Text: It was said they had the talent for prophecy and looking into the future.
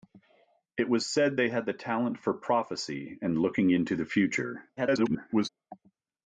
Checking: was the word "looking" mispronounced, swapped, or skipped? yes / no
no